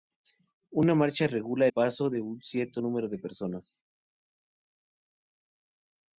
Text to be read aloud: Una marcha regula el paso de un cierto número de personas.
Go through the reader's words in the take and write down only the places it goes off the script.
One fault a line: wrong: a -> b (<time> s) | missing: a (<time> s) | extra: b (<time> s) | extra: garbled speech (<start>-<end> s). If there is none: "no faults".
missing: el (1.7 s)